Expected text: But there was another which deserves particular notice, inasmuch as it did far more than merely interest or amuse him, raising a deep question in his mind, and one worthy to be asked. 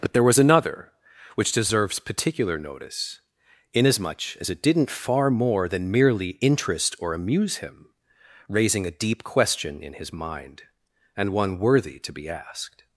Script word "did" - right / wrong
wrong